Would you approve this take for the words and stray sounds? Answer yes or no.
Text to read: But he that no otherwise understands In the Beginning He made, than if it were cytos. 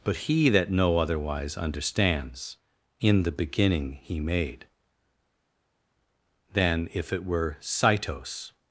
yes